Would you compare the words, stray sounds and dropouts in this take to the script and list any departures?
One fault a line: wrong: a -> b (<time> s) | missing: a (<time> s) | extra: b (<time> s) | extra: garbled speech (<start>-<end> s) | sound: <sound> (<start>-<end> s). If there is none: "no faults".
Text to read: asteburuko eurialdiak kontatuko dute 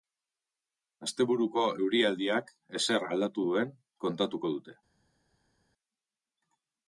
extra: ezer aldatu duen (2.8 s)